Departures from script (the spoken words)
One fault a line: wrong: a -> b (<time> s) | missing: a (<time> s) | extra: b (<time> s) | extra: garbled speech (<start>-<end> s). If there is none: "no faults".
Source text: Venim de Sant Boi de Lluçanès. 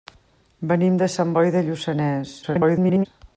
extra: garbled speech (2.4-3.1 s)